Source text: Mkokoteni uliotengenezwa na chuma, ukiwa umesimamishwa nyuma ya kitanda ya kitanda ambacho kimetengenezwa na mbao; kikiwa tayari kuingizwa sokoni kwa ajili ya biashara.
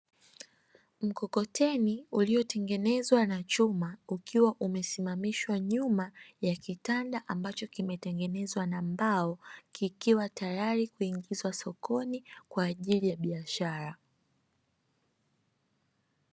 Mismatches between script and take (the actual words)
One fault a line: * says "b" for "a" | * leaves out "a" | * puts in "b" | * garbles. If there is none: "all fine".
* leaves out "ya kitanda"